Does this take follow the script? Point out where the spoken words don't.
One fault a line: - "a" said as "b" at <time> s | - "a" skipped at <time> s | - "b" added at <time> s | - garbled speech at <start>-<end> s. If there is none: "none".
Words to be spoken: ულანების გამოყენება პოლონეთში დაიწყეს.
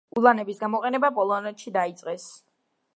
none